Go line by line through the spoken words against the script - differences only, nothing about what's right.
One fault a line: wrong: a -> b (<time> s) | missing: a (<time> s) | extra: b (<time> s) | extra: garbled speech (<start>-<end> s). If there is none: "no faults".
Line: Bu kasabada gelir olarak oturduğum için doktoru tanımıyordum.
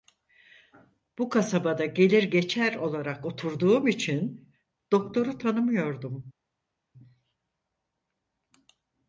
extra: geçer (2.2 s)